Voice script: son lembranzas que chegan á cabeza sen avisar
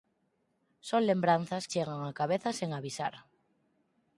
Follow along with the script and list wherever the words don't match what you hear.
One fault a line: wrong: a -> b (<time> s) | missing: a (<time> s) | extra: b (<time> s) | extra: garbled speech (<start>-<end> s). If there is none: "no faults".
missing: que (1.6 s)